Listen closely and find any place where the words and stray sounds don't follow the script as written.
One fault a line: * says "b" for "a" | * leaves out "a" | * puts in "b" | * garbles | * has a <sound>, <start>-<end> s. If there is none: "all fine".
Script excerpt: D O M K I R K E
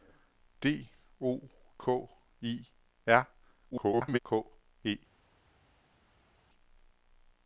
* leaves out "M"
* garbles